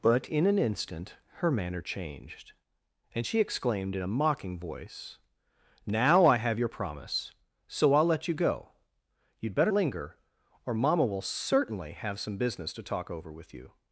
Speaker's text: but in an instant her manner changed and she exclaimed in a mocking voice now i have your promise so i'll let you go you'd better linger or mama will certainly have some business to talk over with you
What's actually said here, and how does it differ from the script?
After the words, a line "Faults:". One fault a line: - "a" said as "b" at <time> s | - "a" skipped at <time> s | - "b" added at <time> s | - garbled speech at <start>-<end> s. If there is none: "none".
but in an instant her manner changed and she exclaimed in a mocking voice now i have your promise so i'll let you go you'd better linger or mama will certainly have some business to talk over with you
Faults:
none